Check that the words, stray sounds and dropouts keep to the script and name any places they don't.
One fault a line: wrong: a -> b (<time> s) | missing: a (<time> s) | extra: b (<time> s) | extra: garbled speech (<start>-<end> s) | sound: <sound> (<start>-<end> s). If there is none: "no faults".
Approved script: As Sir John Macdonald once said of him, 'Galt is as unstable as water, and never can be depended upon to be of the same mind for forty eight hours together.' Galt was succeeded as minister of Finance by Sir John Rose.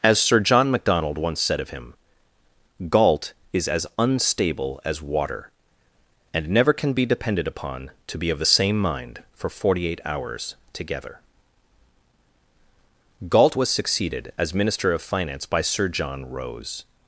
no faults